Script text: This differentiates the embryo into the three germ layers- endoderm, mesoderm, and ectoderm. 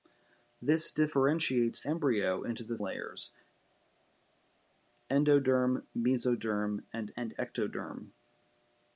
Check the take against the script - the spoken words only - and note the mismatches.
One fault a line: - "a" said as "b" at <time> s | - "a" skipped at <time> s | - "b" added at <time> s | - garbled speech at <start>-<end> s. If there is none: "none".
- "the" skipped at 1.8 s
- "three germ" skipped at 2.8 s
- "and" added at 7.1 s